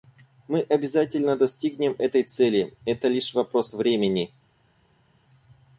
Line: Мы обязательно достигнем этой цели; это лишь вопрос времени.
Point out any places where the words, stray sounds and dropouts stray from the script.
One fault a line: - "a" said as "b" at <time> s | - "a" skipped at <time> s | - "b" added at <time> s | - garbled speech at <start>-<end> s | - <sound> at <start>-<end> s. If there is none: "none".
none